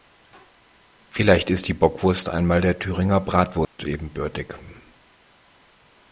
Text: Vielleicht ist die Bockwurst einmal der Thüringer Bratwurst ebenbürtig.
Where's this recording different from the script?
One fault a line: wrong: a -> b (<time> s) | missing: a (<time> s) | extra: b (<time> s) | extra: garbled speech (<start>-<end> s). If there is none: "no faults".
no faults